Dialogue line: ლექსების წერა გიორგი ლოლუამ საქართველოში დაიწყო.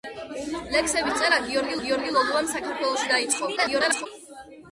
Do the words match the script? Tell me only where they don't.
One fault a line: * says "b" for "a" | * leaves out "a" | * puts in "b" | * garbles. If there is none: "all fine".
* puts in "გიორგი"
* garbles